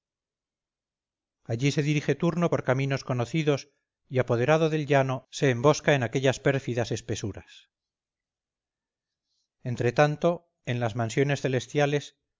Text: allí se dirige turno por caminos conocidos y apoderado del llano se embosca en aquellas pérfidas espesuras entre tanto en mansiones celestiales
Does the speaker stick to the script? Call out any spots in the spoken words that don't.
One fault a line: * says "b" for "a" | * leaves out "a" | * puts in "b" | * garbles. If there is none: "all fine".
* puts in "las"